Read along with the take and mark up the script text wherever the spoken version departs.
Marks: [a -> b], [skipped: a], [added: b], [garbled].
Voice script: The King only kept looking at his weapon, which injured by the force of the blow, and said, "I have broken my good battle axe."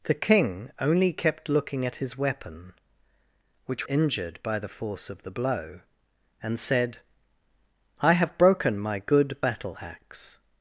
The King only kept looking at his weapon, which injured by the force of the blow, and said, "I have broken my good battle axe."